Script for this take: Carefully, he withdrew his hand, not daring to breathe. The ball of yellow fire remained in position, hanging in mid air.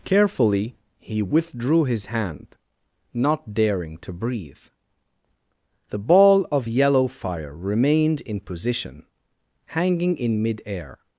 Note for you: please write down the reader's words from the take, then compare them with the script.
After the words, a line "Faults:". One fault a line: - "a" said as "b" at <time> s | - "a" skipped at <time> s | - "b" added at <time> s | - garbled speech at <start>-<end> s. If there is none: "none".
Carefully, he withdrew his hand, not daring to breathe. The ball of yellow fire remained in position, hanging in mid air.
Faults:
none